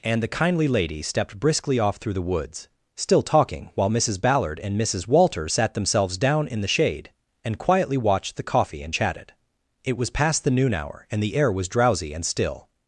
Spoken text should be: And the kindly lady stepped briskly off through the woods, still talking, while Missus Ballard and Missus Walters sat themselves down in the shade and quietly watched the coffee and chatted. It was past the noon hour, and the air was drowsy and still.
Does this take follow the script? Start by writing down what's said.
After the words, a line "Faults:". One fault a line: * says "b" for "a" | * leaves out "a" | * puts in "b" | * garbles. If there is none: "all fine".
And the kindly lady stepped briskly off through the woods, still talking, while Missus Ballard and Missus Walters sat themselves down in the shade and quietly watched the coffee and chatted. It was past the noon hour, and the air was drowsy and still.
Faults:
all fine